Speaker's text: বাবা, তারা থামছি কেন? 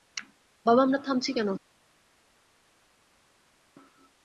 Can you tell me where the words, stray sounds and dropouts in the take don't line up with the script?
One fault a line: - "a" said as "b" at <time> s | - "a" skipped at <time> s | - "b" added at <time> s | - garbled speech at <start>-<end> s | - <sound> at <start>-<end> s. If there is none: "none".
- "তারা" said as "আমরা" at 0.8 s